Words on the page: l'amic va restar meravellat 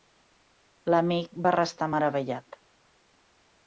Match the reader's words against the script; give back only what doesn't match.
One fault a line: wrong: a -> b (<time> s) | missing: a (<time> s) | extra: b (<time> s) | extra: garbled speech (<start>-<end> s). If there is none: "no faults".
no faults